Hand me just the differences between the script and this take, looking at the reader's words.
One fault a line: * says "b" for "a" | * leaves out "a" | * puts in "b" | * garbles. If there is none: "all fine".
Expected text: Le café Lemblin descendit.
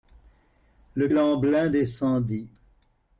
* leaves out "café"